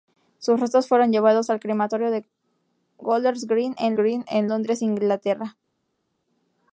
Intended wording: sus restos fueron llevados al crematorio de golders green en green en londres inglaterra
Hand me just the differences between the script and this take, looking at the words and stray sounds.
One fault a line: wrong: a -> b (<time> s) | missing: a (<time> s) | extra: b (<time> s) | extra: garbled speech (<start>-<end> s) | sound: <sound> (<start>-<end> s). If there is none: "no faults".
no faults